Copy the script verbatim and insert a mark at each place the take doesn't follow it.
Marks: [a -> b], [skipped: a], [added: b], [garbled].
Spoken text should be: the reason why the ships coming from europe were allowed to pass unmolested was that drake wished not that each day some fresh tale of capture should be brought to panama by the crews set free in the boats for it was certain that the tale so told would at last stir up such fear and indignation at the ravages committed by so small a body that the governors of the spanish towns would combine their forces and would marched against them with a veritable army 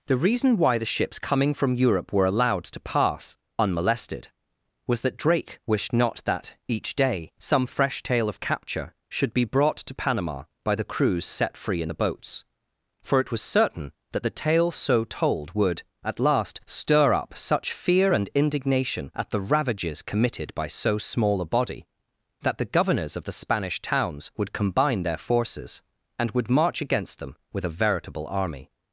the reason why the ships coming from europe were allowed to pass unmolested was that drake wished not that each day some fresh tale of capture should be brought to panama by the crews set free in the boats for it was certain that the tale so told would at last stir up such fear and indignation at the ravages committed by so small a body that the governors of the spanish towns would combine their forces and would [marched -> march] against them with a veritable army